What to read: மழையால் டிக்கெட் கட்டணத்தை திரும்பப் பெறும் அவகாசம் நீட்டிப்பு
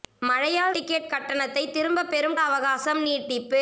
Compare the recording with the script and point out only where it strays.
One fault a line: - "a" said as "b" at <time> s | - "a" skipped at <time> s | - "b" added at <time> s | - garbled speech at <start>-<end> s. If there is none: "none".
none